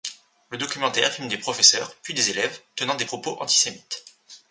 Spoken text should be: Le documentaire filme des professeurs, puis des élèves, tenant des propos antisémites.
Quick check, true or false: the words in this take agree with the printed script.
true